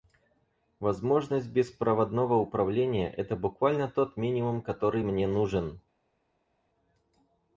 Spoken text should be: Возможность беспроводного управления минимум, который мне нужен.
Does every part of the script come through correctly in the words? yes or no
no